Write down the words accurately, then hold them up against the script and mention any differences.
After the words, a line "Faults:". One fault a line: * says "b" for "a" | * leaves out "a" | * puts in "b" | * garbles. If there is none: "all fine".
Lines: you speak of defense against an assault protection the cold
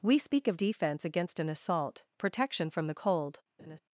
we speak of defense against an assault protection from the cold
Faults:
* says "we" for "you"
* puts in "from"